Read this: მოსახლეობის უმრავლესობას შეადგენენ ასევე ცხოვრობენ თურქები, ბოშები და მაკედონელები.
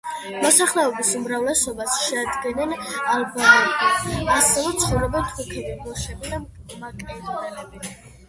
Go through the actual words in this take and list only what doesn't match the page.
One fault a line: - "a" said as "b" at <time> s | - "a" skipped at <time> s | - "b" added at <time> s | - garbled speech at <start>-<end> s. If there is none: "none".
- "ალბანელები" added at 3.1 s